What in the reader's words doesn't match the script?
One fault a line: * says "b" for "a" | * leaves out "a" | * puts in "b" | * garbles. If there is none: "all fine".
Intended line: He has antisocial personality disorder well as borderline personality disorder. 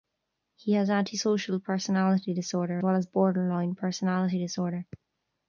all fine